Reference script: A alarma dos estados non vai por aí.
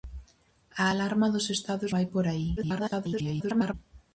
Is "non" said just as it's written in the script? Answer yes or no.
no